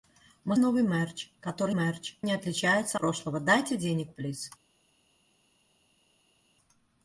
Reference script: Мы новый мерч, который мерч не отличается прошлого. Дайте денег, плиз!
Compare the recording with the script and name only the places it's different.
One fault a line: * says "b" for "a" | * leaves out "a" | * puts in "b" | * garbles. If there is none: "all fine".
all fine